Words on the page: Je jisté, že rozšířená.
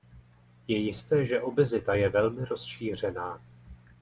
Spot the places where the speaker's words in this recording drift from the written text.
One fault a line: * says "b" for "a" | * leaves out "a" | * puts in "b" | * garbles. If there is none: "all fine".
* puts in "obezita je velmi"